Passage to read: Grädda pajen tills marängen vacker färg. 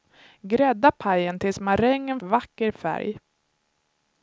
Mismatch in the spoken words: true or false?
false